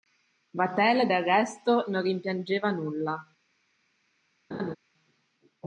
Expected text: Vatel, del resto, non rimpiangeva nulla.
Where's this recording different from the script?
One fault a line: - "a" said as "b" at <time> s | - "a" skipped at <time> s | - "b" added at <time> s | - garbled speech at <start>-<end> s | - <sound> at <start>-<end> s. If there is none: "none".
- laugh at 4.5-4.8 s